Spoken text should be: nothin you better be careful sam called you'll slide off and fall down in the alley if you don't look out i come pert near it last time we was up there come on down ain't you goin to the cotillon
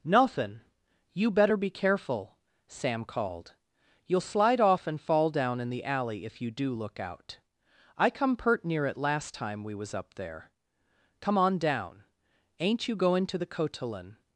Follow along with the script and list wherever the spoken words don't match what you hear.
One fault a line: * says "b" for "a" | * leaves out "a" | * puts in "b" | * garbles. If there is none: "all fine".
* says "do" for "don't"